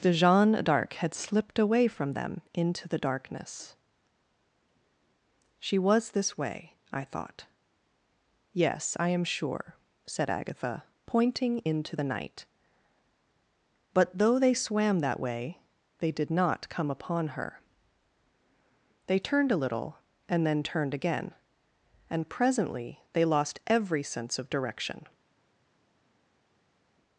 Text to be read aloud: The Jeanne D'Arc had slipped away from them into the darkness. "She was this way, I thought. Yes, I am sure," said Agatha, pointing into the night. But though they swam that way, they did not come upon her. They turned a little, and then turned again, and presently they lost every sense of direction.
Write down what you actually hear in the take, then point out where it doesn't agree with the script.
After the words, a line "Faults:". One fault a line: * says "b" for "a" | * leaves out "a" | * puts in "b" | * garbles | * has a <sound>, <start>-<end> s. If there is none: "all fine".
The Jeanne D'Arc had slipped away from them into the darkness. "She was this way, I thought. Yes, I am sure," said Agatha, pointing into the night. But though they swam that way, they did not come upon her. They turned a little, and then turned again, and presently they lost every sense of direction.
Faults:
all fine